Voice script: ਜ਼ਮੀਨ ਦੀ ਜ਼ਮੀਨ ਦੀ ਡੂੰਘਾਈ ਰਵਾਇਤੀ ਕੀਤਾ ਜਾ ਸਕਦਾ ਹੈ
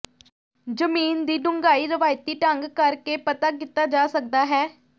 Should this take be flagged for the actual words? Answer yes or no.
yes